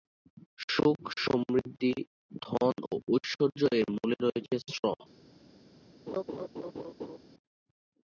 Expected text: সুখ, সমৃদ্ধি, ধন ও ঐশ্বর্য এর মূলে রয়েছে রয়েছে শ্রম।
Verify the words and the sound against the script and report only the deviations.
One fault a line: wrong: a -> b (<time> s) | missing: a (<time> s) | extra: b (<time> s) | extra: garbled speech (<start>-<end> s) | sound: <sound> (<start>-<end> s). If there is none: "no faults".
missing: রয়েছে (4.5 s)
sound: laugh (6.1-7.2 s)